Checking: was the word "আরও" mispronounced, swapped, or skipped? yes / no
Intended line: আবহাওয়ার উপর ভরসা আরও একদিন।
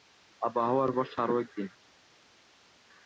no